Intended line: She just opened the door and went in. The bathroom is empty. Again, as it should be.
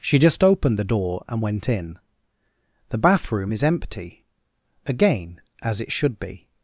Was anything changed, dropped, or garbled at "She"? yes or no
no